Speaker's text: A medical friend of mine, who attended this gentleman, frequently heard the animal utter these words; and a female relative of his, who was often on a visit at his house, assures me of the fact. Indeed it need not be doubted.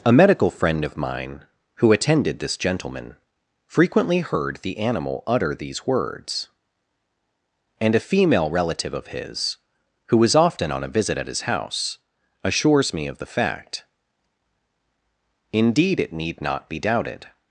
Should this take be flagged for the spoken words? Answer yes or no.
no